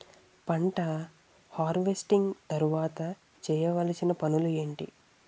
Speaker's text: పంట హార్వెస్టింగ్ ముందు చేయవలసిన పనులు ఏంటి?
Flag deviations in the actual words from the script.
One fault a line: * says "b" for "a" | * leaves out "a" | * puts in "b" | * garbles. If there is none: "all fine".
* says "తర్వాత" for "ముందు"